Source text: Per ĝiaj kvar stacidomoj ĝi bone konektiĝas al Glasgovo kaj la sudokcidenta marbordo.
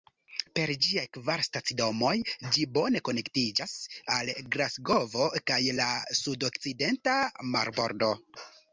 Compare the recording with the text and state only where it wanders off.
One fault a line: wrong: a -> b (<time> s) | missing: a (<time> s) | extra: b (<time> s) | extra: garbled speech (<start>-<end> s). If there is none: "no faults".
no faults